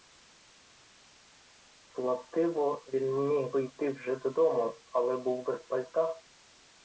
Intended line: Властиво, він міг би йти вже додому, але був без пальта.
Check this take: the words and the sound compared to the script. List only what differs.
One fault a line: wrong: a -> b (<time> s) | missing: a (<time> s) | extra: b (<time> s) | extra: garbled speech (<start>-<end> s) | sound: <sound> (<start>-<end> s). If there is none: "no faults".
no faults